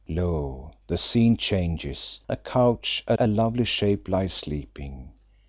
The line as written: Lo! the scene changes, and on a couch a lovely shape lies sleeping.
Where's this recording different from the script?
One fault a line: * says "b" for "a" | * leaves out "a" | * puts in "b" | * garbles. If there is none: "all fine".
* says "a couch" for "and on"
* leaves out "couch"